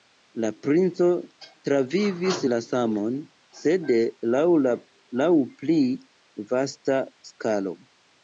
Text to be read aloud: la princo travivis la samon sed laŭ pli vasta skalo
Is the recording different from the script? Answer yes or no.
no